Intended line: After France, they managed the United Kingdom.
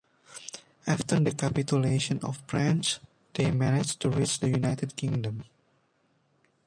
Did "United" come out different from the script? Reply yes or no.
no